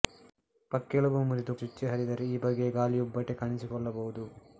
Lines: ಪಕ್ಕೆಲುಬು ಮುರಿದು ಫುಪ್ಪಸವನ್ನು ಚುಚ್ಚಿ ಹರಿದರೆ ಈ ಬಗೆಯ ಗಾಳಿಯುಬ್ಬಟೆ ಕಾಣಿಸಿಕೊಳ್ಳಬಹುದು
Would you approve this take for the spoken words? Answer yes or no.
no